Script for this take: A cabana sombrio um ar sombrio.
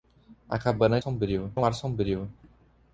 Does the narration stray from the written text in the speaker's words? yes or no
no